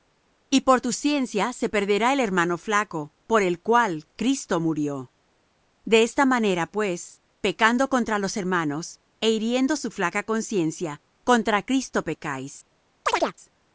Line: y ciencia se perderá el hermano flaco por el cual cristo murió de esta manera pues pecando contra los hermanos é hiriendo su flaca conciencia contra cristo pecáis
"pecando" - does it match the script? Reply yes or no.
yes